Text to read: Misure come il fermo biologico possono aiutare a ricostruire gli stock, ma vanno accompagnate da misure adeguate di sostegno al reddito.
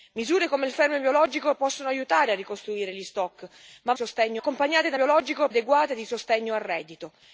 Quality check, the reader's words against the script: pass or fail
fail